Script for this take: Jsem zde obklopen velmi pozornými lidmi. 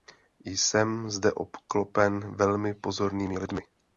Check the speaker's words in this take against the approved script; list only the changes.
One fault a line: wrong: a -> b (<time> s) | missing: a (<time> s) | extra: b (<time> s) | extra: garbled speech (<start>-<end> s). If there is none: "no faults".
no faults